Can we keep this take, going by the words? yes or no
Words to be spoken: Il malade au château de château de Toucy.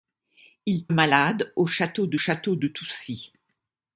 yes